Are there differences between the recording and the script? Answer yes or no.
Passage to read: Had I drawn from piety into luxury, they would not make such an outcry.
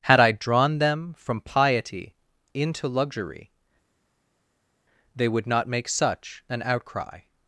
yes